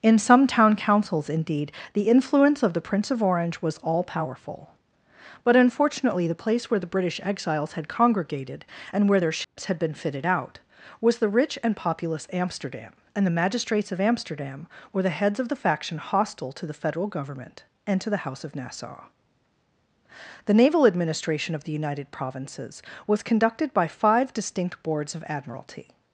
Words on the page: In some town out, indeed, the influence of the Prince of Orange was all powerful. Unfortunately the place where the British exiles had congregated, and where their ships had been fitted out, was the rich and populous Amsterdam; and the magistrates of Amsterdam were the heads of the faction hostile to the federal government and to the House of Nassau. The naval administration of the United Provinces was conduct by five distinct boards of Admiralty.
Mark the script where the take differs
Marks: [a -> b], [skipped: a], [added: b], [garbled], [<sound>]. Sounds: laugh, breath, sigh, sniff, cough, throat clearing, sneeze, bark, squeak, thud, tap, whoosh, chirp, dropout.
In some town [out, -> councils] indeed, the influence of the Prince of Orange was all powerful. [added: But] Unfortunately the place where the British exiles had congregated, and where their ships [dropout] had been fitted out, was the rich and populous Amsterdam; and the magistrates of Amsterdam were the heads of the faction hostile to the federal government and to the House of Nassau. The naval administration of the United Provinces was [conduct -> conducted] by five distinct boards of Admiralty.